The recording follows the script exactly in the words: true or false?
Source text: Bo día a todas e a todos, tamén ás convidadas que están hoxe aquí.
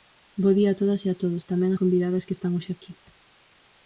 false